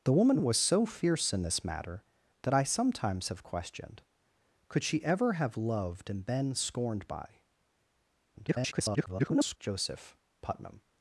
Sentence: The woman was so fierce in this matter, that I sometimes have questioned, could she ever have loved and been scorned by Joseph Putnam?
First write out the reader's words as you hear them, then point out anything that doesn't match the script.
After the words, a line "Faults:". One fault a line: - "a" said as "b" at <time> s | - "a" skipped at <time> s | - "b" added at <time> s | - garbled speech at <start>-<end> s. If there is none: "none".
The woman was so fierce in this matter, that I sometimes have questioned, could she ever have loved and been scorned by [garbled] Joseph Putnam?
Faults:
- garbled speech at 8.3-9.6 s